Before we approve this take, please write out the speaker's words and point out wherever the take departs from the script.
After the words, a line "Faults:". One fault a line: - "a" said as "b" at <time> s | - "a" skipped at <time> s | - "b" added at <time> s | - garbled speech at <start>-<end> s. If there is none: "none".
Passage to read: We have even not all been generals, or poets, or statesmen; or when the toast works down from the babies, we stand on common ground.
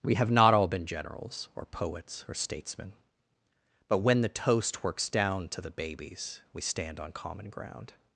We have not all been generals, or poets, or statesmen; but when the toast works down to the babies, we stand on common ground.
Faults:
- "even" skipped at 0.3 s
- "or" said as "but" at 3.9 s
- "from" said as "to" at 5.5 s